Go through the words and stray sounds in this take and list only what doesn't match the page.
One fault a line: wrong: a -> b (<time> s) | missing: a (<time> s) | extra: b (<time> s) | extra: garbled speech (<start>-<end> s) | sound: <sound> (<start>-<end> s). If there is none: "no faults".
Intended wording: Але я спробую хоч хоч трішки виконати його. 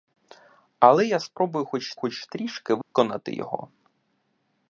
sound: dropout (2.8-3.0 s)